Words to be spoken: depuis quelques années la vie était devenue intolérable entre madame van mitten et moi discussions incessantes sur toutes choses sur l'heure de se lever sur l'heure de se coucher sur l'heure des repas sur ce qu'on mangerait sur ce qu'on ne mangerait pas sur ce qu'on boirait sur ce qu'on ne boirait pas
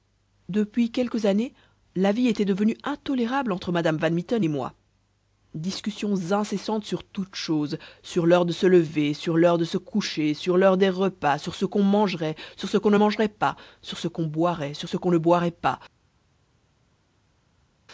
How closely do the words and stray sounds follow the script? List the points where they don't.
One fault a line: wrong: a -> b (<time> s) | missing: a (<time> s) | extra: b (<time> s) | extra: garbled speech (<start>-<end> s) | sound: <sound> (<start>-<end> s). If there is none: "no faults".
no faults